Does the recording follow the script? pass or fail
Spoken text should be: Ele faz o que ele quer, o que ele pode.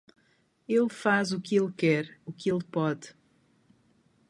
pass